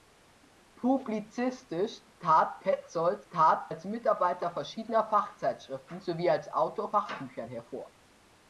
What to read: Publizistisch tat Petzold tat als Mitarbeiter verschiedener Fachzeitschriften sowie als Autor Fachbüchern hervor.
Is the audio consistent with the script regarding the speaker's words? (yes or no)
yes